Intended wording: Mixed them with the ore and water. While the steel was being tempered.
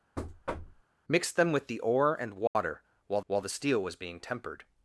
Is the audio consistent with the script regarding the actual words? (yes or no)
no